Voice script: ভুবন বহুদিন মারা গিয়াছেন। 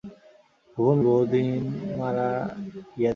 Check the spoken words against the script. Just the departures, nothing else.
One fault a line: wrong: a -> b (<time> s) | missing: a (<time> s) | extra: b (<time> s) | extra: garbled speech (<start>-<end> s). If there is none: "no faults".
no faults